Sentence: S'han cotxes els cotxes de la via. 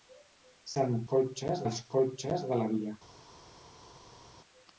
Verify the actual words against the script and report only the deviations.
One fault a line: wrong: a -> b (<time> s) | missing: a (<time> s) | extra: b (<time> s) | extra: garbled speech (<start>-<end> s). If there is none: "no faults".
no faults